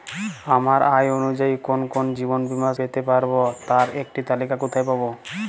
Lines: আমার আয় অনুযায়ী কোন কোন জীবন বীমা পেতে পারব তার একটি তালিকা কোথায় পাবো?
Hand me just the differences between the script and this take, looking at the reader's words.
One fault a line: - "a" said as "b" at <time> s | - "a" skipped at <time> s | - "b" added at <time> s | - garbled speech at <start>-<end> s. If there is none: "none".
none